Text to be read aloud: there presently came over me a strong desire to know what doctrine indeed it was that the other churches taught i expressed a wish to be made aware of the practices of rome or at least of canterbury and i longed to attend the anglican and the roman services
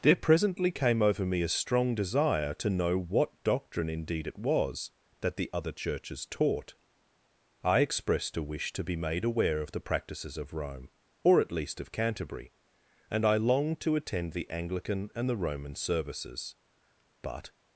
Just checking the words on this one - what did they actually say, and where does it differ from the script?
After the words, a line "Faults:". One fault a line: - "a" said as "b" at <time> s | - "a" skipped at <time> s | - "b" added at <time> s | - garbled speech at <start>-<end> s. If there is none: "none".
there presently came over me a strong desire to know what doctrine indeed it was that the other churches taught i expressed a wish to be made aware of the practices of rome or at least of canterbury and i longed to attend the anglican and the roman services but
Faults:
- "but" added at 17.2 s